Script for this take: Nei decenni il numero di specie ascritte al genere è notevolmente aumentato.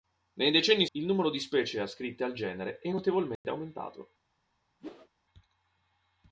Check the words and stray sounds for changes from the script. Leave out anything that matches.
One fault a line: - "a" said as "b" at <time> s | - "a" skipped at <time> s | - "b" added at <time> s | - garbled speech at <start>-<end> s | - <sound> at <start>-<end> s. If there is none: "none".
- dropout at 3.4-3.4 s
- whoosh at 4.8-5.1 s